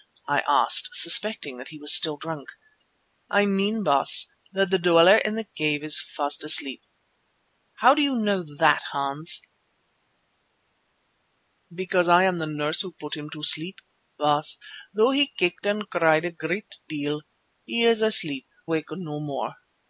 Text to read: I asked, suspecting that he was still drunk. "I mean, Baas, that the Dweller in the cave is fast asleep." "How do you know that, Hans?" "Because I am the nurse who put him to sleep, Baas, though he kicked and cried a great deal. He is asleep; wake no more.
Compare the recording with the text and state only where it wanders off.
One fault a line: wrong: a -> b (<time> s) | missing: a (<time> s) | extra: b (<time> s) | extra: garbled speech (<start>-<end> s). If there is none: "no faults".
no faults